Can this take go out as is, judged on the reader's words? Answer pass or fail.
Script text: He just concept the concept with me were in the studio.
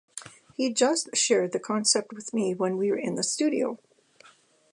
fail